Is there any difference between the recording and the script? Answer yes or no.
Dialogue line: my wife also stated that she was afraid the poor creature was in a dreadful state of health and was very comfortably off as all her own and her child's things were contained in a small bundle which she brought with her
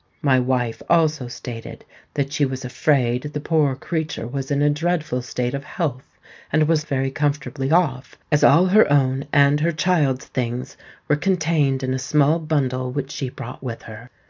no